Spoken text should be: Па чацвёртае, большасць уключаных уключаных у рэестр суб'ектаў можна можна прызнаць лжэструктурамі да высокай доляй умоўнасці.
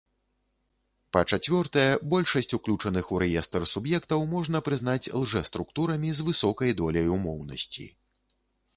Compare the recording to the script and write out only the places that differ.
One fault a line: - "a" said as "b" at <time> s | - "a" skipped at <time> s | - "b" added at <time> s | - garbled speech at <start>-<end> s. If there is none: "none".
- "уключаных" skipped at 3.1 s
- "можна" skipped at 4.6 s
- "да" said as "з" at 6.2 s